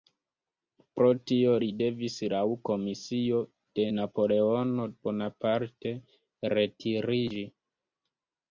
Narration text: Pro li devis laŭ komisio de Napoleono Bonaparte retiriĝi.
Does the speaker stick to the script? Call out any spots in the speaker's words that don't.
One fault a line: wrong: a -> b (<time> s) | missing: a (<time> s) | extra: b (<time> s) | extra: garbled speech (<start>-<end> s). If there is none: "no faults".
extra: tio (1.3 s)